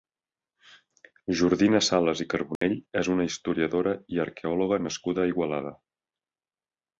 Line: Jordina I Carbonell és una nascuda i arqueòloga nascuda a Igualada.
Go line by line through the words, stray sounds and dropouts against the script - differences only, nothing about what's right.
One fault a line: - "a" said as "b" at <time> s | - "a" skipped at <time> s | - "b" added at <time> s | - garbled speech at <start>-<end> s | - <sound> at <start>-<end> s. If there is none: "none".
- "Sales" added at 1.9 s
- dropout at 2.6-2.6 s
- "nascuda" said as "historiadora" at 3.3 s